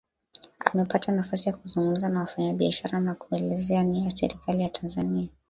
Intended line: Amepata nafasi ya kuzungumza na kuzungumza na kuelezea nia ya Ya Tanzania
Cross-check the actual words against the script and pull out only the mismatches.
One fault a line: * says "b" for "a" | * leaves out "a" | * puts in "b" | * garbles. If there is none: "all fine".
* says "wafanyabiashara" for "kuzungumza"
* puts in "Serikali"